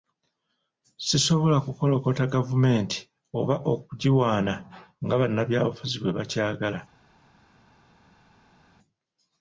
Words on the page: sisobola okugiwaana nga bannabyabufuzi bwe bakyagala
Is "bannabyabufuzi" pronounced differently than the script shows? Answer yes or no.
no